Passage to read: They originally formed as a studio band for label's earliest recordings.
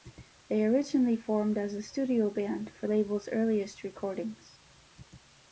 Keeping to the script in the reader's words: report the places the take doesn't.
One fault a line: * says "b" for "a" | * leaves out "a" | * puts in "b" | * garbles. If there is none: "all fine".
all fine